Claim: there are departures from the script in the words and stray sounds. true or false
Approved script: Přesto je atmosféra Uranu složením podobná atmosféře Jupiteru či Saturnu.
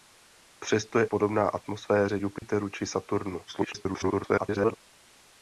true